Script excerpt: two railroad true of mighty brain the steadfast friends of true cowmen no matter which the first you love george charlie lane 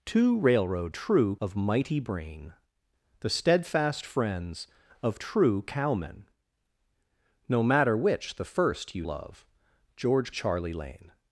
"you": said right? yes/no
yes